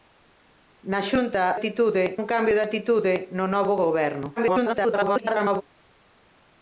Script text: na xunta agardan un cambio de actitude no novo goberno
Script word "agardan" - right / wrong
wrong